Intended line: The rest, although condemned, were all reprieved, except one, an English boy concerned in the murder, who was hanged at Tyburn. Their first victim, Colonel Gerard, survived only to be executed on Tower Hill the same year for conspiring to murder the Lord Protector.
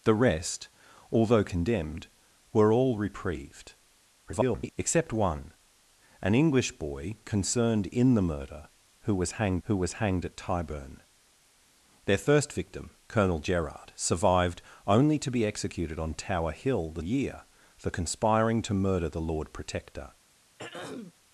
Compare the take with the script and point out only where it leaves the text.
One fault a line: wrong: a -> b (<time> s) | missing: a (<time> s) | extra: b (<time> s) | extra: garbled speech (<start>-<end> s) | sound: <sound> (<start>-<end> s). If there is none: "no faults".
extra: garbled speech (4.3-4.7 s)
extra: who was hanged (9.6 s)
missing: same (17.0 s)
sound: throat clearing (20.6-21.1 s)